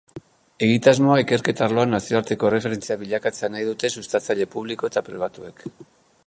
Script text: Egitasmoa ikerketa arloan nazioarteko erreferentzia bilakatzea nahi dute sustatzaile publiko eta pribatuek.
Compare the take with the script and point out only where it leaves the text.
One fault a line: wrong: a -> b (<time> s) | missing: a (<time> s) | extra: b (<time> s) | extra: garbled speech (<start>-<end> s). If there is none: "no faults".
no faults